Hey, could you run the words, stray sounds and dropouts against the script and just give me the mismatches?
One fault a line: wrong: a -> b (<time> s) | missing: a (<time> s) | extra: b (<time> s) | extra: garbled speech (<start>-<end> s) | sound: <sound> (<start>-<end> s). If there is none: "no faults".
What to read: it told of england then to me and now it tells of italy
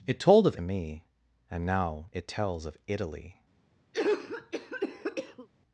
missing: england then to (0.6 s)
sound: cough (3.9-5.5 s)